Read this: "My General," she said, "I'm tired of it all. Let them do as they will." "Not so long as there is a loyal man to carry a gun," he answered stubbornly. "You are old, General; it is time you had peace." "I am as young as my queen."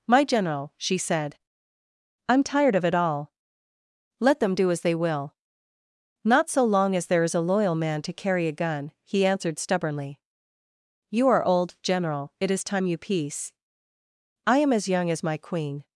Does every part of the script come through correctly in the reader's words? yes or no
no